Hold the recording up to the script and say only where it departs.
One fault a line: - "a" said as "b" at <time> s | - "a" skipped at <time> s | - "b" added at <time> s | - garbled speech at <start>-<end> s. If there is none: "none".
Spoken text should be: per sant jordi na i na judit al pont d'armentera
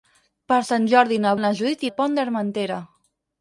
none